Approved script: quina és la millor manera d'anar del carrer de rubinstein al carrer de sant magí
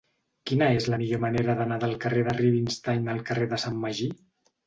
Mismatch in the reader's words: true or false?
false